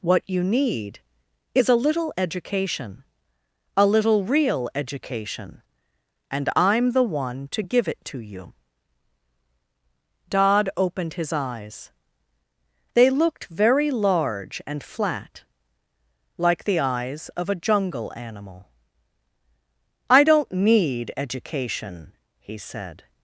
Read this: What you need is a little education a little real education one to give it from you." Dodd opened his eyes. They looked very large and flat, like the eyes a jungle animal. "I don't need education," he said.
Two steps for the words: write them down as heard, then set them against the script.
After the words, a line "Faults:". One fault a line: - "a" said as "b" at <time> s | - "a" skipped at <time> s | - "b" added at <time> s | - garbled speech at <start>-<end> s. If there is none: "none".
What you need is a little education a little real education and I'm the one to give it to you." Dodd opened his eyes. They looked very large and flat, like the eyes of a jungle animal. "I don't need education," he said.
Faults:
- "and I'm the" added at 6.3 s
- "from" said as "to" at 8.1 s
- "of" added at 17.4 s